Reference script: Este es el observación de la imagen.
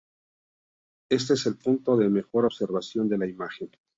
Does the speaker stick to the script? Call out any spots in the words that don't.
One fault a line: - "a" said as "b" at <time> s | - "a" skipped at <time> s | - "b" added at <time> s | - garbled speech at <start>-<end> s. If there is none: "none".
- "punto de mejor" added at 1.6 s